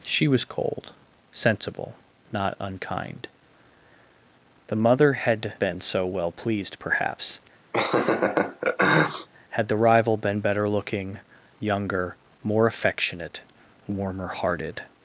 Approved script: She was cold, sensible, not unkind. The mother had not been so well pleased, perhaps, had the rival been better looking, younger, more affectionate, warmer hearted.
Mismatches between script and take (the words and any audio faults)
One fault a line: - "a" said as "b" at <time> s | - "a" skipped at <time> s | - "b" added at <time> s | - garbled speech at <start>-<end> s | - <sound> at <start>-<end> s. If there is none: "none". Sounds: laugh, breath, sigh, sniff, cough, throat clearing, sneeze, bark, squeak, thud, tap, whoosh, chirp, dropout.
- "not" skipped at 5.5 s
- laugh at 7.7-9.3 s